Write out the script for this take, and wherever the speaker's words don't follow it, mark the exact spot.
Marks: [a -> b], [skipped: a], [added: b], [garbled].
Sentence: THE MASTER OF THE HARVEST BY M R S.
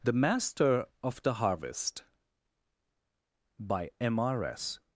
THE MASTER OF THE HARVEST BY M R S.